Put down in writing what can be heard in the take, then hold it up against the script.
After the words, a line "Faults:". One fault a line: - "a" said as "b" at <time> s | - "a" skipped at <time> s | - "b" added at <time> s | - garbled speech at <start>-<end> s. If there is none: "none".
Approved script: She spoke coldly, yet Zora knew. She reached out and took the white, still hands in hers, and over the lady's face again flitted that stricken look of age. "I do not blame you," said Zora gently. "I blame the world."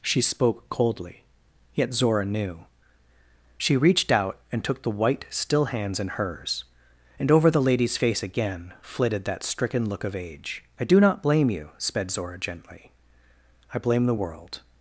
She spoke coldly, yet Zora knew. She reached out and took the white, still hands in hers, and over the lady's face again flitted that stricken look of age. "I do not blame you," sped Zora gently. "I blame the world."
Faults:
- "said" said as "sped" at 11.8 s